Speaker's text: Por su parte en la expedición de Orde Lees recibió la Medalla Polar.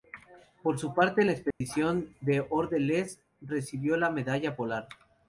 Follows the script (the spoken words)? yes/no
yes